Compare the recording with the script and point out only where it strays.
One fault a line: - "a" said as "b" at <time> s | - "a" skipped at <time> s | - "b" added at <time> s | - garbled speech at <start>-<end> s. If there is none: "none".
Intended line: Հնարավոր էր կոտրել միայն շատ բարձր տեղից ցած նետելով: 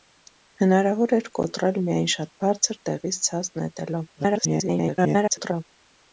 - garbled speech at 4.2-5.6 s